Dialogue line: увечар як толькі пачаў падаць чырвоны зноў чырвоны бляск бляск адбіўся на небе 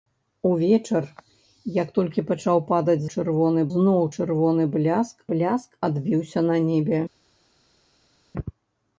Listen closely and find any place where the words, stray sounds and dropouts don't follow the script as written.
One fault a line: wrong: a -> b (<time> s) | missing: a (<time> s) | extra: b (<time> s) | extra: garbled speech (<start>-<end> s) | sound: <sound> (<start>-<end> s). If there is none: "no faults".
no faults